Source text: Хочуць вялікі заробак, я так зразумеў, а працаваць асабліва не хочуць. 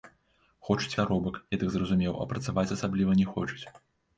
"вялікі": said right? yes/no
no